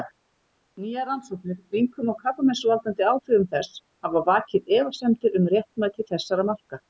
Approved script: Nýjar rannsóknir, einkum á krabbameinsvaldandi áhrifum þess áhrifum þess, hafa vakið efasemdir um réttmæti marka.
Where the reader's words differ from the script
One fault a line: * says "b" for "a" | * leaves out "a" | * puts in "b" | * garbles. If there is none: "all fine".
* leaves out "áhrifum þess"
* puts in "þessara"